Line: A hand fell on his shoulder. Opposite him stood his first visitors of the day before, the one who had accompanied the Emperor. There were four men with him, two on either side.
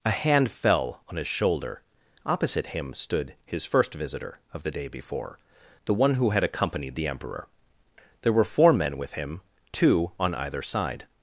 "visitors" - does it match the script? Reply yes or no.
no